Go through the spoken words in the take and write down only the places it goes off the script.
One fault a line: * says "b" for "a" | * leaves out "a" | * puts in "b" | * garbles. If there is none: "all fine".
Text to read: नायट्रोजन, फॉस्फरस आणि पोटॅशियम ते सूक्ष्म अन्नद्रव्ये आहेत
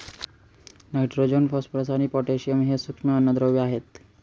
* says "हे" for "ते"